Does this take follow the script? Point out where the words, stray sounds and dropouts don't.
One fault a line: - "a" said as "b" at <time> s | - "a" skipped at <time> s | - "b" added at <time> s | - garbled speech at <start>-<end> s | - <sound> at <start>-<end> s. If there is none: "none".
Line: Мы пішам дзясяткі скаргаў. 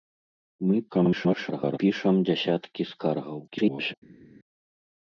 - garbled speech at 0.9-1.8 s
- garbled speech at 3.5-3.9 s